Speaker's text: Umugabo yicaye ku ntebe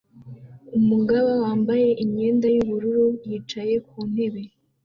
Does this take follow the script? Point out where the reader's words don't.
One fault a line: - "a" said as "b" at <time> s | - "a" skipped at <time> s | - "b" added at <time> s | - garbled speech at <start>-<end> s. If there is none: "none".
- "wambaye imyenda yubururu" added at 1.4 s